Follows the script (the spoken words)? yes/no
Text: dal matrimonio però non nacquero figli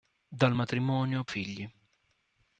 no